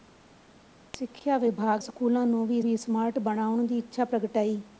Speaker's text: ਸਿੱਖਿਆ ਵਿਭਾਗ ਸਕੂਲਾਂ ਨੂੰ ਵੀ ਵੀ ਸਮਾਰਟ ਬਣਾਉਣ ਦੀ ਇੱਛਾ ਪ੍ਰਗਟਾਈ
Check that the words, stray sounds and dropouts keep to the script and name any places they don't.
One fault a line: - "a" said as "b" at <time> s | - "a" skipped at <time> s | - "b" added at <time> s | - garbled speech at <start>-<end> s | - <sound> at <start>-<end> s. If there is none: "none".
none